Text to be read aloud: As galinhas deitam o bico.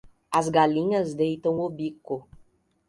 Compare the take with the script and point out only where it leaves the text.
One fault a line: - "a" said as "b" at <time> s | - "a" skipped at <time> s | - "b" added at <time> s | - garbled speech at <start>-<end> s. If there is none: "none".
none